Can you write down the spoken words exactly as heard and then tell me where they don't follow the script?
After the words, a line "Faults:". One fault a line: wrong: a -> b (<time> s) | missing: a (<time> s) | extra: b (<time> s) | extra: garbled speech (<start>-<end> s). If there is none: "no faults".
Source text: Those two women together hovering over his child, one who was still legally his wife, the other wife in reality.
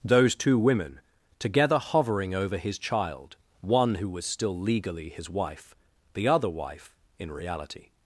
Those two women together hovering over his child, one who was still legally his wife, the other wife in reality.
Faults:
no faults